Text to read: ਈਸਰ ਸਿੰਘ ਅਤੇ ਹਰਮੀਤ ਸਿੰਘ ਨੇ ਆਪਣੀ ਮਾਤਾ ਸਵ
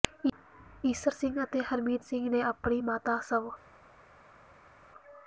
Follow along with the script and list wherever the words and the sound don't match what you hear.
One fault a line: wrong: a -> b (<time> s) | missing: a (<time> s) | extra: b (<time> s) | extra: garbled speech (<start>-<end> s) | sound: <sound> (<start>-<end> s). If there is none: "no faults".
no faults